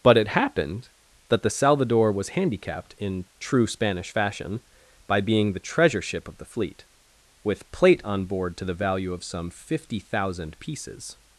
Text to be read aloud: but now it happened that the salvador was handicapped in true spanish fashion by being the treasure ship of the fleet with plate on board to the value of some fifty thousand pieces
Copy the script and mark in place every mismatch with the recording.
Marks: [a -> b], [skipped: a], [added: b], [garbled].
but [skipped: now] it happened that the salvador was handicapped in true spanish fashion by being the treasure ship of the fleet with plate on board to the value of some fifty thousand pieces